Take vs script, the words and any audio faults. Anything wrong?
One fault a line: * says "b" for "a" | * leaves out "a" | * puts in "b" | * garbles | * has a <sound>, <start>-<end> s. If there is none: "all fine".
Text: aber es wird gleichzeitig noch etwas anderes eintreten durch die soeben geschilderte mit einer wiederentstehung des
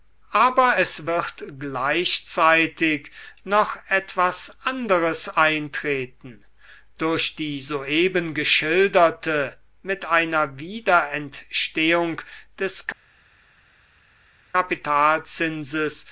all fine